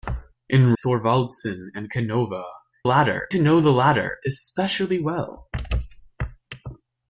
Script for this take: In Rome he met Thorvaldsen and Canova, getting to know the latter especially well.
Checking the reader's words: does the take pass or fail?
fail